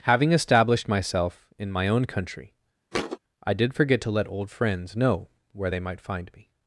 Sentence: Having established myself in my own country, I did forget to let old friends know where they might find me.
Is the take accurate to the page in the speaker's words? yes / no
yes